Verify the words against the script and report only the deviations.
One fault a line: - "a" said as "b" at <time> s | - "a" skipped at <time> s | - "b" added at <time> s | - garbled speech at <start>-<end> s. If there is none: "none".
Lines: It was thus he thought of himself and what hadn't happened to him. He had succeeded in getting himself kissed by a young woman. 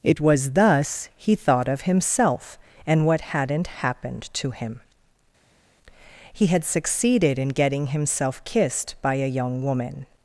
none